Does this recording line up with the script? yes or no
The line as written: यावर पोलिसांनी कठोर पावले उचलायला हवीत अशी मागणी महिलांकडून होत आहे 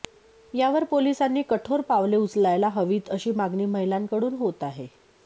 yes